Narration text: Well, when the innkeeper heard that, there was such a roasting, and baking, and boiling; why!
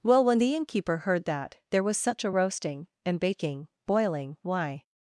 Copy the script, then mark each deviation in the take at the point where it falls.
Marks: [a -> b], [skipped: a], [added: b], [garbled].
Well, when the innkeeper heard that, there was such a roasting, and baking, [skipped: and] boiling; why!